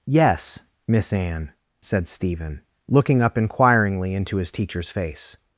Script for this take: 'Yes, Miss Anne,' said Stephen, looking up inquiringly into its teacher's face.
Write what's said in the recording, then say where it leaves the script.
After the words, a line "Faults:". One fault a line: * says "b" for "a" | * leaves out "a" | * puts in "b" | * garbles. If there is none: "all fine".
'Yes, Miss Anne,' said Stephen, looking up inquiringly into his teacher's face.
Faults:
* says "his" for "its"